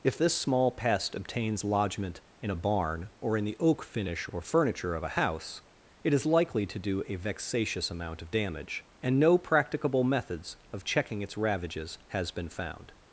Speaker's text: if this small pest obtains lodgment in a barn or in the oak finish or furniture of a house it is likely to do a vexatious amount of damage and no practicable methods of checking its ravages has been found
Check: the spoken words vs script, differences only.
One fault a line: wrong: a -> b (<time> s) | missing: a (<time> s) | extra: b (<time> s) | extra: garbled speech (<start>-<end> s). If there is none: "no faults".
no faults